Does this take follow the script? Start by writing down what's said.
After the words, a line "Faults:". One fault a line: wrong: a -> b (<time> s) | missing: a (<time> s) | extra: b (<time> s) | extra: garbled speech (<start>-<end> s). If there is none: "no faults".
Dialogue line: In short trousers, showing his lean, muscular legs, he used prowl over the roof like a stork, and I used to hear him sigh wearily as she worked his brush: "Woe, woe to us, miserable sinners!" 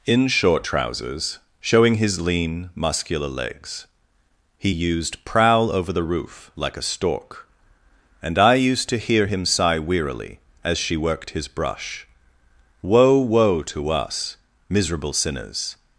In short trousers, showing his lean, muscular legs, he used prowl over the roof like a stork, and I used to hear him sigh wearily as she worked his brush: "Woe, woe to us, miserable sinners!"
Faults:
no faults